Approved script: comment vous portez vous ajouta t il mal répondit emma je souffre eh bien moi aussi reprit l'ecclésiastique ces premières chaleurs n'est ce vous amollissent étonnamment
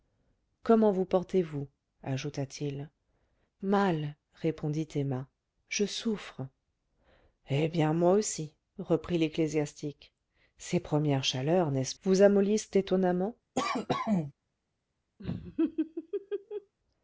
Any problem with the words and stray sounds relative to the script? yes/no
yes